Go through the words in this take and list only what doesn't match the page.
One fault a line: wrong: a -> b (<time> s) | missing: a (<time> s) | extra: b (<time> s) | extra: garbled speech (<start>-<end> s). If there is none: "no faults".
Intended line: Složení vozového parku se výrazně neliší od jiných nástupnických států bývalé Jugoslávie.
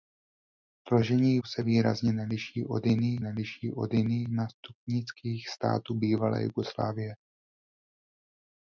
wrong: vozového parku se výrazně -> se výrazně neliší od jiných (1.5 s)